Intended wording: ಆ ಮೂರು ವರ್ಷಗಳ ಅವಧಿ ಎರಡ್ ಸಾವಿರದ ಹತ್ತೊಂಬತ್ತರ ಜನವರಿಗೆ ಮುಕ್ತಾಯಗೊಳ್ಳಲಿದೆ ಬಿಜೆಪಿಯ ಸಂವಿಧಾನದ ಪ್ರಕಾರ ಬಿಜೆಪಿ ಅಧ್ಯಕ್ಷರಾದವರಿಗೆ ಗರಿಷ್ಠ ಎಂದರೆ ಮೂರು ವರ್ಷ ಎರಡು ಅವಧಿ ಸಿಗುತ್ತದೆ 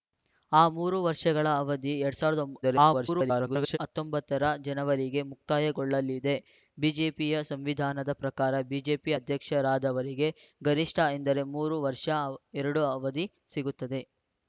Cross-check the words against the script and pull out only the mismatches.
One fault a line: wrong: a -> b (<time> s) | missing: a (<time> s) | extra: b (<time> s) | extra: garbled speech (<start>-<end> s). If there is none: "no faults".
extra: garbled speech (2.6-3.8 s)